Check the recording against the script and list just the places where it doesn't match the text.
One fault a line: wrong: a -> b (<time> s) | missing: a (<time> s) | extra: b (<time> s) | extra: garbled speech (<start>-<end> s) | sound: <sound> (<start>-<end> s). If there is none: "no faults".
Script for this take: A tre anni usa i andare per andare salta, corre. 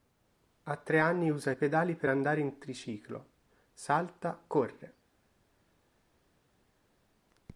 wrong: andare -> pedali (1.5 s)
extra: in triciclo (2.4 s)